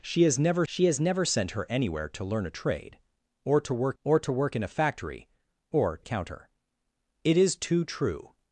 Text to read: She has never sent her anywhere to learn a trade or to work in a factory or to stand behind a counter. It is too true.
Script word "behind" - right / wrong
wrong